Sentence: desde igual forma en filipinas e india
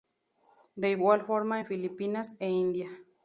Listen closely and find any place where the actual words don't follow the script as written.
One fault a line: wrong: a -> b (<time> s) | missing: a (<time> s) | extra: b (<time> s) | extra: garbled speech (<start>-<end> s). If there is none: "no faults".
wrong: desde -> de (0.7 s)